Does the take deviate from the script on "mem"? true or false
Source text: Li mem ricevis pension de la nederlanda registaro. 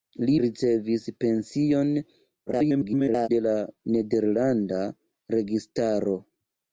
true